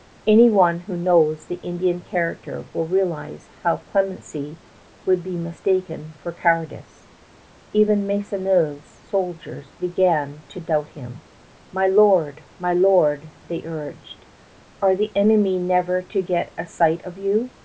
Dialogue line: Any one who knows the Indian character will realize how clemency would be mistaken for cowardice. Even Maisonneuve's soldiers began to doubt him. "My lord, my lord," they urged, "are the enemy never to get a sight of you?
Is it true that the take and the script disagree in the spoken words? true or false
false